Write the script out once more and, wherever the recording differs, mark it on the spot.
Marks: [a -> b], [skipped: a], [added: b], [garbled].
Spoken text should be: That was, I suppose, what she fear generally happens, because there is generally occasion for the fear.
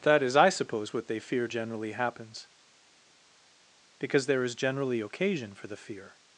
That [was, -> is] I suppose, what [she -> they] fear generally happens, because there is generally occasion for the fear.